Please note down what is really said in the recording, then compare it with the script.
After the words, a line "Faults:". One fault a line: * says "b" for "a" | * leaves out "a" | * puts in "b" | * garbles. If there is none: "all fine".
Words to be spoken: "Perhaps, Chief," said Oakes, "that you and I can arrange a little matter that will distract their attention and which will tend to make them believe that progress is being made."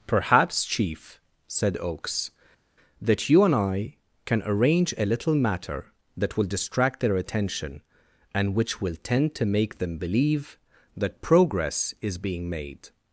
"Perhaps, Chief," said Oakes, "that you and I can arrange a little matter that will distract their attention and which will tend to make them believe that progress is being made."
Faults:
all fine